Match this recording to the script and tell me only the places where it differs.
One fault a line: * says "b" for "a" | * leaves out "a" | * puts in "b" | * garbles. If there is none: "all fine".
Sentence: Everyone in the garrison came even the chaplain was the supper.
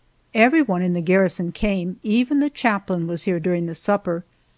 * puts in "here during"